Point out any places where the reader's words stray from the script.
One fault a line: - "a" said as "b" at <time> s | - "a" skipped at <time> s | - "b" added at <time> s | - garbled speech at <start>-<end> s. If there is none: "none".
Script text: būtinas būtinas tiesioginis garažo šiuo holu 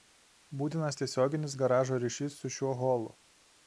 - "būtinas" skipped at 1.0 s
- "ryšys su" added at 2.1 s